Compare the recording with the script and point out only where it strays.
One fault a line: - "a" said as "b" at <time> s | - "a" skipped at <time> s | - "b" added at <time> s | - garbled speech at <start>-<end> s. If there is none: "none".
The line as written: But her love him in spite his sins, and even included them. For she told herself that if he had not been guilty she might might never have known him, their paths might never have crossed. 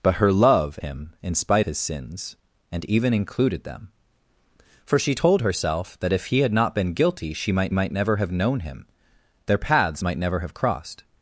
none